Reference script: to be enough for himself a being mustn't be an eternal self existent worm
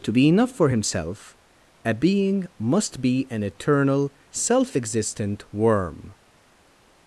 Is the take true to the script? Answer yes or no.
no